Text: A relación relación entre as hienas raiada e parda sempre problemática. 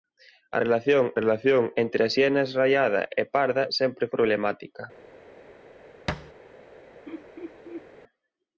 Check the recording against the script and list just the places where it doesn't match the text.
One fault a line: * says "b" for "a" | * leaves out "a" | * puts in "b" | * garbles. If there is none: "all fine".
all fine